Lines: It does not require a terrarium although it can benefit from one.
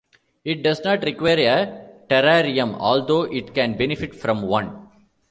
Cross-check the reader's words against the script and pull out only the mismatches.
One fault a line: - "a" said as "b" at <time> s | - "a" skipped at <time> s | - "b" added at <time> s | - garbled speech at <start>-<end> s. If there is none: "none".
none